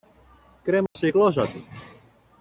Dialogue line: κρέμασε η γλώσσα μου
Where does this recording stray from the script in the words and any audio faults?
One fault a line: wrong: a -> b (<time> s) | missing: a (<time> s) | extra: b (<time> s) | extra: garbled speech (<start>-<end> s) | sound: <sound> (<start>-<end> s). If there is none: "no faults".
sound: dropout (0.9-1.0 s)
wrong: μου -> του (1.5 s)